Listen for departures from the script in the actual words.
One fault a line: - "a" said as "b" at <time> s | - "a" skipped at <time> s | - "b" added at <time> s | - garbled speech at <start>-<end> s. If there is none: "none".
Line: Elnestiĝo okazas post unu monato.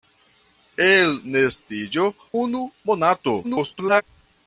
- "okazas post" skipped at 2.1 s
- garbled speech at 3.4-4.0 s